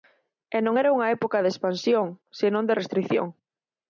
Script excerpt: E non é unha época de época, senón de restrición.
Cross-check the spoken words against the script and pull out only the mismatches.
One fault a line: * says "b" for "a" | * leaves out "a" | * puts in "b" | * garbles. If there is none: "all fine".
* says "era" for "é"
* says "expansión" for "época"